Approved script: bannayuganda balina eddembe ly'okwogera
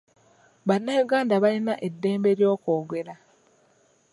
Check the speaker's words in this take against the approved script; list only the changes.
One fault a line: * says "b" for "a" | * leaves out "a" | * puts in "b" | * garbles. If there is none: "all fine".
all fine